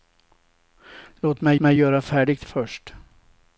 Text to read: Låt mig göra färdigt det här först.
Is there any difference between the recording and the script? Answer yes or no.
yes